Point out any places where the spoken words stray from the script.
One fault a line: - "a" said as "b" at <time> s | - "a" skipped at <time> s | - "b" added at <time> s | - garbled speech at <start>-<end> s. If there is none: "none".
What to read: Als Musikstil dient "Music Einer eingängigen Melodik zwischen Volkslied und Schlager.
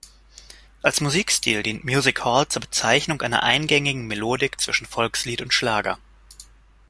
- "Hall zur Bezeichnung" added at 2.2 s